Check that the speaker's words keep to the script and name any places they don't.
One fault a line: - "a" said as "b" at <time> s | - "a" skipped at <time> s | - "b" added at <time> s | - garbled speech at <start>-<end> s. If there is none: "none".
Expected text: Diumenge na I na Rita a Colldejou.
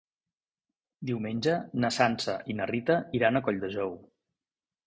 - "Sança" added at 2.0 s
- "iran" added at 3.2 s